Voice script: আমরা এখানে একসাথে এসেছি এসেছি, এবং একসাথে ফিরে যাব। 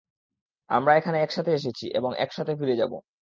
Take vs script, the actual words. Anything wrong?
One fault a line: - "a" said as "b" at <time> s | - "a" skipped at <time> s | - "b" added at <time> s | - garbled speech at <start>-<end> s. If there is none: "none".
- "এসেছি" skipped at 1.9 s